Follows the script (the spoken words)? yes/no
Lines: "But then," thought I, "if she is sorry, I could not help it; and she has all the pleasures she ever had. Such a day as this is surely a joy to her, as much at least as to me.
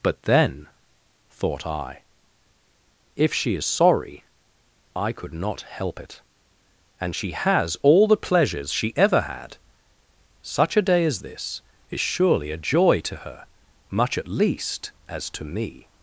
no